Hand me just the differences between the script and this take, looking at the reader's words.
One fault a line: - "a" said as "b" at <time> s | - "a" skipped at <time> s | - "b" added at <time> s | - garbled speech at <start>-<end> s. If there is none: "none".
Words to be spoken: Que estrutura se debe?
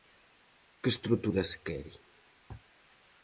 - "debe" said as "quere" at 1.6 s